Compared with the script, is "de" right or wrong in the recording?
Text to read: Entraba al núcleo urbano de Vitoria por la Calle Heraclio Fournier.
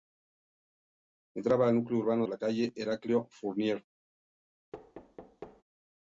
wrong